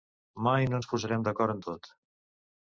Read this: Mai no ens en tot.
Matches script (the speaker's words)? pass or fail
fail